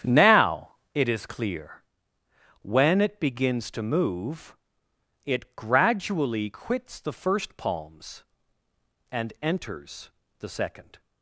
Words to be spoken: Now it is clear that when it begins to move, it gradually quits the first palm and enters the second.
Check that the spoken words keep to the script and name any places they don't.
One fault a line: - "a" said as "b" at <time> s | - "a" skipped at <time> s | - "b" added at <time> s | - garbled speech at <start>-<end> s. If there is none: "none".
- "that" skipped at 1.8 s
- "palm" said as "palms" at 7.6 s